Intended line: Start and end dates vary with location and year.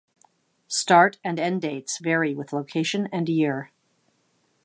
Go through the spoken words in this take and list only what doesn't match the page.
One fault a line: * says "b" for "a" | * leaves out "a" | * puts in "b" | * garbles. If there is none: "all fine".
all fine